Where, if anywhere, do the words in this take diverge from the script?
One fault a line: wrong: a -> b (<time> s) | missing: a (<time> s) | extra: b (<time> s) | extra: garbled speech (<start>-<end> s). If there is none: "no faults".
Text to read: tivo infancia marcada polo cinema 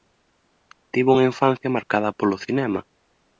extra: unha (1.1 s)